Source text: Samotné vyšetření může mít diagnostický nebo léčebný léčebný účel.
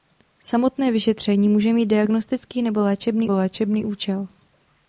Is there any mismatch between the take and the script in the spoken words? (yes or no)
no